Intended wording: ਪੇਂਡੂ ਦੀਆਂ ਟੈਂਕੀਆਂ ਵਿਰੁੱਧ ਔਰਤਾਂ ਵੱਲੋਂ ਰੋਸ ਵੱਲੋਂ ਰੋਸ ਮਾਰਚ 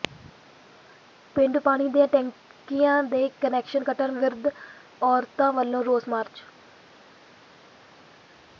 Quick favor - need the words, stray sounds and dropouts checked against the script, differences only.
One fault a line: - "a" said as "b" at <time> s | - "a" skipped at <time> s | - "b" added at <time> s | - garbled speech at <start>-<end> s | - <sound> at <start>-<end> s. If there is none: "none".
- "ਪਾਣੀ" added at 1.6 s
- "ਦੇ ਕੁਨੈਕਸ਼ਨ ਕੱਟਣ" added at 3.0 s
- "ਵੱਲੋਂ ਰੋਸ" skipped at 6.1 s